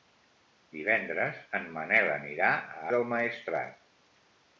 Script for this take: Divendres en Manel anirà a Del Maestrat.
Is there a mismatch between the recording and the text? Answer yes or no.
no